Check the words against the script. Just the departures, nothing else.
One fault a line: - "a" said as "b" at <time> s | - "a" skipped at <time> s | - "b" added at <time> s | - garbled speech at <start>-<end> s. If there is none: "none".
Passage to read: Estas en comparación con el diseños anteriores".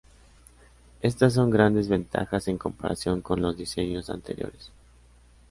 - "son grandes ventajas" added at 1.4 s
- "el" said as "los" at 3.4 s